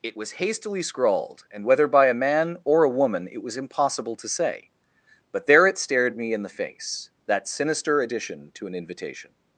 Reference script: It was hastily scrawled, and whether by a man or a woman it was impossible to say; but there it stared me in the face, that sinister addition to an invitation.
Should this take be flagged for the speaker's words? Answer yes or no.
no